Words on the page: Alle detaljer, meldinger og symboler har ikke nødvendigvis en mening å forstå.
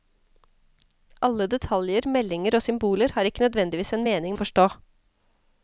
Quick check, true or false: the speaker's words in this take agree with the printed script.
true